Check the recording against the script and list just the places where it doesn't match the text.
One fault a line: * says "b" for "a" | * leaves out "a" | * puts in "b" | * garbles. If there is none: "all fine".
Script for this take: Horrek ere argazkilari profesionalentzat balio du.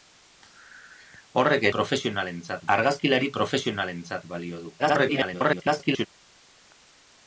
* says "profesionalentzat" for "ere"
* garbles